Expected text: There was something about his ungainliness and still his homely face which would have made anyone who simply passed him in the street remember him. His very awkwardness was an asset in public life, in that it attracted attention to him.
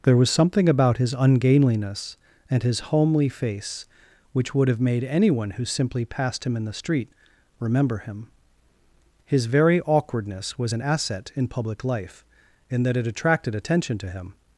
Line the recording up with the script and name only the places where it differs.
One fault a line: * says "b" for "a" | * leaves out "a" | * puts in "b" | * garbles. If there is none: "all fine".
* leaves out "still"